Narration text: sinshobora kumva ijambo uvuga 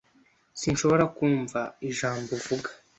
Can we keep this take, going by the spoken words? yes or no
yes